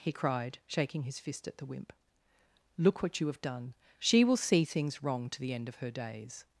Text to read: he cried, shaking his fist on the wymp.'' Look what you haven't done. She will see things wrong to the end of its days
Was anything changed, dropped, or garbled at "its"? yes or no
yes